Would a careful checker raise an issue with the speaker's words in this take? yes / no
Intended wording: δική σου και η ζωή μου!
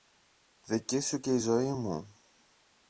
no